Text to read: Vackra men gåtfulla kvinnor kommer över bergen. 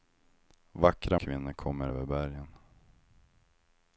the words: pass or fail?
fail